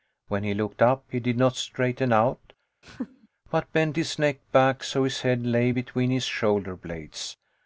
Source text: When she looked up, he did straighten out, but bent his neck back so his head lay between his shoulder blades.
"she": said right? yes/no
no